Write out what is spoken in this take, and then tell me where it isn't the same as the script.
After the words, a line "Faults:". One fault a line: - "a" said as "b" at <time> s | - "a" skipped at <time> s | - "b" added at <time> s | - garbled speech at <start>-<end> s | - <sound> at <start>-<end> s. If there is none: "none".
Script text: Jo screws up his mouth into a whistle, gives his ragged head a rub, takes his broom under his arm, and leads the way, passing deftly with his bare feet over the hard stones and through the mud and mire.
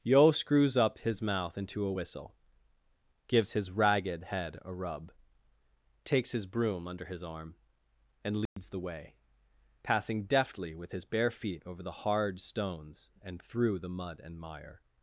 Yo screws up his mouth into a whistle, gives his ragged head a rub, takes his broom under his arm, and leads the way, passing deftly with his bare feet over the hard stones and through the mud and mire.
Faults:
- "Jo" said as "Yo" at 0.0 s
- dropout at 8.5-8.6 s